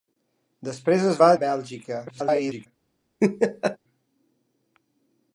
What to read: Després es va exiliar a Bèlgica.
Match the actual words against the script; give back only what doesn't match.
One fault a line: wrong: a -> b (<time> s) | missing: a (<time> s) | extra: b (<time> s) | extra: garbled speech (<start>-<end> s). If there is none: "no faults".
missing: exiliar (1.3 s)
extra: garbled speech (2.1-2.7 s)